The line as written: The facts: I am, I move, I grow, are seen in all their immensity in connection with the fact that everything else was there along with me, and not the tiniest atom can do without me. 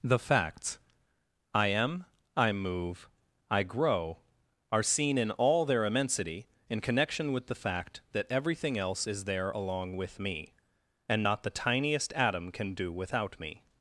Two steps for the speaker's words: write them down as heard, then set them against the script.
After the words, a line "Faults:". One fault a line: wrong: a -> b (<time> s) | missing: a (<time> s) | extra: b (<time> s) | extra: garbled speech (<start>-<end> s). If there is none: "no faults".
The facts: I am, I move, I grow, are seen in all their immensity in connection with the fact that everything else is there along with me, and not the tiniest atom can do without me.
Faults:
wrong: was -> is (9.1 s)